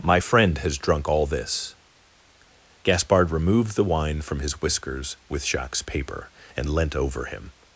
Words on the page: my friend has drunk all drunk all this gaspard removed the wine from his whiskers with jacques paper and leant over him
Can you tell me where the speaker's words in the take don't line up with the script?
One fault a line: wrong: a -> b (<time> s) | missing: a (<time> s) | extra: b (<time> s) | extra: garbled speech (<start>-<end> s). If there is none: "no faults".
missing: drunk all (1.3 s)